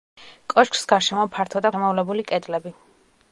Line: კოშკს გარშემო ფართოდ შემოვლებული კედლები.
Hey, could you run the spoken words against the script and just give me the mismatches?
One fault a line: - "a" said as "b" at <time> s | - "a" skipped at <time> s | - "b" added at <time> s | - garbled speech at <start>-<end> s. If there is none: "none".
none